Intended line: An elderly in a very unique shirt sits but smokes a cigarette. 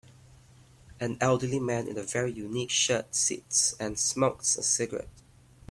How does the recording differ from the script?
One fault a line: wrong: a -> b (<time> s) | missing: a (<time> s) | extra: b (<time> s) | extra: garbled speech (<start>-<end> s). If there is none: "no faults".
extra: man (1.6 s)
wrong: but -> and (3.8 s)